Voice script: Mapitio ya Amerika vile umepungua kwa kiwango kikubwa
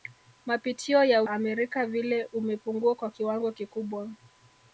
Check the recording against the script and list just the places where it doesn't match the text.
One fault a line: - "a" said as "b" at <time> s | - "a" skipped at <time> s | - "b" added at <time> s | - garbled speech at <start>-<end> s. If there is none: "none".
none